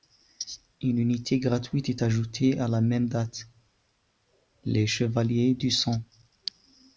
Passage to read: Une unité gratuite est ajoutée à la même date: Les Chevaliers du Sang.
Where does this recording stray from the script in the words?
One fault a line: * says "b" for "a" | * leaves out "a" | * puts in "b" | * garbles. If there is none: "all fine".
all fine